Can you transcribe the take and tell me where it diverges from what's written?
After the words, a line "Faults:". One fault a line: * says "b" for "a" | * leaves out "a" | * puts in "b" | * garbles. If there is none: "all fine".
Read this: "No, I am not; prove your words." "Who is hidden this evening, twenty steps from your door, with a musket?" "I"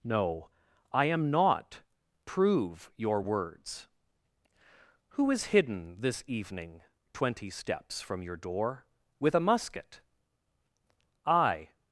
"No, I am not; prove your words." "Who is hidden this evening, twenty steps from your door, with a musket?" "I"
Faults:
all fine